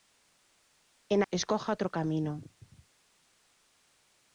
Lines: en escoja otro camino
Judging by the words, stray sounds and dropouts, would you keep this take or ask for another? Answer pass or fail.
pass